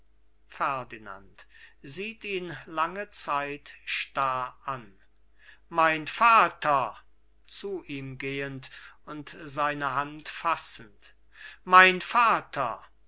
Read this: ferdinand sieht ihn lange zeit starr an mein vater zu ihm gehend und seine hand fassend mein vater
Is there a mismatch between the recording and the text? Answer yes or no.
no